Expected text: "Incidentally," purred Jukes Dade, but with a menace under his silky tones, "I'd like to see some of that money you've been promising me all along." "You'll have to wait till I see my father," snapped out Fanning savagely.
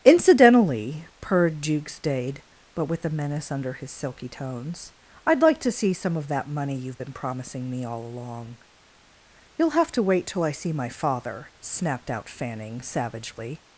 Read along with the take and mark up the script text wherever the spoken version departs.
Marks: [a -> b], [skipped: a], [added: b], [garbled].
"Incidentally," purred Jukes Dade, but with a menace under his silky tones, "I'd like to see some of that money you've been promising me all along." "You'll have to wait till I see my father," snapped out Fanning savagely.